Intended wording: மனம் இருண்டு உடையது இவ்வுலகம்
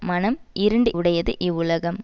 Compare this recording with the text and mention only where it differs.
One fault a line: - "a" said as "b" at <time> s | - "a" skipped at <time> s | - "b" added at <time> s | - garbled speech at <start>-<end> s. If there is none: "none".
none